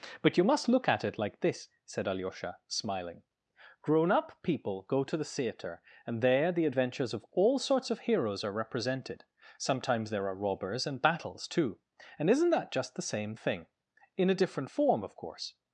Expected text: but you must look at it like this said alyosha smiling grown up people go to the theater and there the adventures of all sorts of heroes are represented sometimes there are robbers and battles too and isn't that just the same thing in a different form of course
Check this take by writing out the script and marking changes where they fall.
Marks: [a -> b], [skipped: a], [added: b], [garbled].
but you must look at it like this said alyosha smiling grown up people go to the theater and there the adventures of all sorts of heroes are represented sometimes there are robbers and battles too and isn't that just the same thing in a different form of course